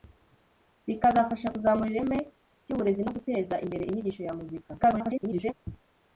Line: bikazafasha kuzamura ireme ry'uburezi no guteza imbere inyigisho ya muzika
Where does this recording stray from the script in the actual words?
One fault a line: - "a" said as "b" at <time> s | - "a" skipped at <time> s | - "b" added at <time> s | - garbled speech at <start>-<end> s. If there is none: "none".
- garbled speech at 4.8-5.5 s